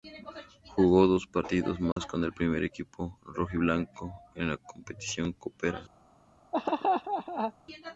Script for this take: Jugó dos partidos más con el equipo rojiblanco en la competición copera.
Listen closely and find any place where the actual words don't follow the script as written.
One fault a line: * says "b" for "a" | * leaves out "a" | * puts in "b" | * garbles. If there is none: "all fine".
* puts in "primer"